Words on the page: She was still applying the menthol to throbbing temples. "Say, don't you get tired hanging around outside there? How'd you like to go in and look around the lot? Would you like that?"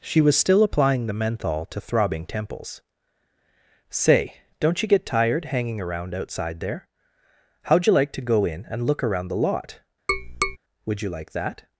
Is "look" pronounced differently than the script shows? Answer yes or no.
no